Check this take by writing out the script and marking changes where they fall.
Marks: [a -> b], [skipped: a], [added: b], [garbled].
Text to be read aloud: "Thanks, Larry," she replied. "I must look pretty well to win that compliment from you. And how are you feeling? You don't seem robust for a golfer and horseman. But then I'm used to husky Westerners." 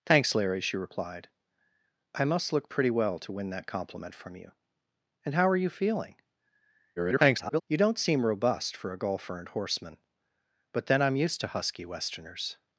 "Thanks, Larry," she replied. "I must look pretty well to win that compliment from you. And how are you feeling? [garbled] You don't seem robust for a golfer and horseman. But then I'm used to husky Westerners."